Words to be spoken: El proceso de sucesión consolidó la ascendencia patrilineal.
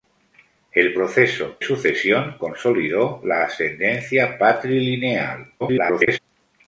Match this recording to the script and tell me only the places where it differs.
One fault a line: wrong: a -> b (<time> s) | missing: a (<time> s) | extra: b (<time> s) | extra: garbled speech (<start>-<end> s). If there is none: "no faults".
missing: de (1.6 s)
extra: garbled speech (5.6-6.2 s)